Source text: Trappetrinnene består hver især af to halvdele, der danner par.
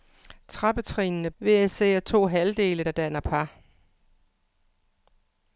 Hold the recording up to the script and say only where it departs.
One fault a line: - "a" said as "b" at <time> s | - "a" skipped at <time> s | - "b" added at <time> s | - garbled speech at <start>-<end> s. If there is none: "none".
- "består" skipped at 1.3 s